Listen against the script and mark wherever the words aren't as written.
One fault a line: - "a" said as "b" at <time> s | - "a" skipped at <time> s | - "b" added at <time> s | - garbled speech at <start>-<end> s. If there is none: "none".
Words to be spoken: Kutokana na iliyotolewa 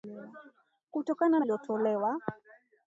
none